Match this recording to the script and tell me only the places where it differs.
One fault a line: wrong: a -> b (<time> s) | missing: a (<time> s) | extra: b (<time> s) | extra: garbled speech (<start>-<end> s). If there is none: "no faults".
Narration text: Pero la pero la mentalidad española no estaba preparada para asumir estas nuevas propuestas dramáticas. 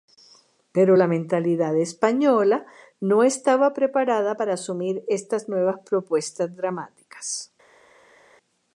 missing: pero la (1.1 s)